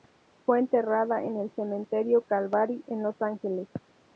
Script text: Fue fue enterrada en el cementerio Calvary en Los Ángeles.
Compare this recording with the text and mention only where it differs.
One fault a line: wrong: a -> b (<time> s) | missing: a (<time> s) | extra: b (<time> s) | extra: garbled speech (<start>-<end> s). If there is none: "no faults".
missing: fue (0.6 s)